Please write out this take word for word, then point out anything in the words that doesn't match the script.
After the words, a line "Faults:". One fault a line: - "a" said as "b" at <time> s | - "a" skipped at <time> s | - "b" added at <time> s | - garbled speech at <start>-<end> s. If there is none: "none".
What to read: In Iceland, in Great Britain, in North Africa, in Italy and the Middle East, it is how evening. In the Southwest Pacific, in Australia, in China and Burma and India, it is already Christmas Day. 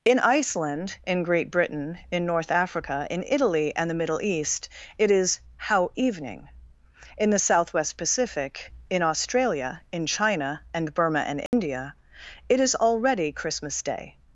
In Iceland, in Great Britain, in North Africa, in Italy and the Middle East, it is how evening. In the Southwest Pacific, in Australia, in China and Burma and India, it is already Christmas Day.
Faults:
none